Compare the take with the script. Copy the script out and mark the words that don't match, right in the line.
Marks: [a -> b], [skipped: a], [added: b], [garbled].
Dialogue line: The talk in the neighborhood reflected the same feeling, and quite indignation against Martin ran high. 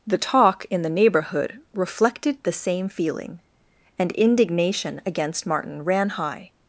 The talk in the neighborhood reflected the same feeling, and [skipped: quite] indignation against Martin ran high.